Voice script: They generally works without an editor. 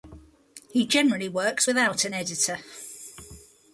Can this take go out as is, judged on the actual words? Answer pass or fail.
fail